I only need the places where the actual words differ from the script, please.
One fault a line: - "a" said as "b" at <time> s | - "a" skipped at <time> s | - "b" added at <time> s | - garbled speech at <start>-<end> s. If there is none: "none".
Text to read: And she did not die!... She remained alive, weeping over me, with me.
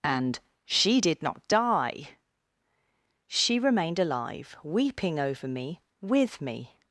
none